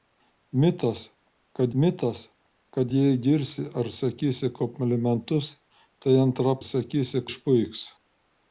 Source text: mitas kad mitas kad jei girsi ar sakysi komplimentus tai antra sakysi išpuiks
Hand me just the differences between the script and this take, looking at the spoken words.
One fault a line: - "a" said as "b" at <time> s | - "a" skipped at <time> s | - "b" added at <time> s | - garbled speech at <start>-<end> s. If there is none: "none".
none